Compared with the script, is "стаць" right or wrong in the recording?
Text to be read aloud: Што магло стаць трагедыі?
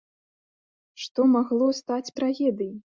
right